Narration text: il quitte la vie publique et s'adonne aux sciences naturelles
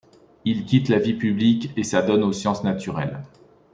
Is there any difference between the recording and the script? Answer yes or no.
no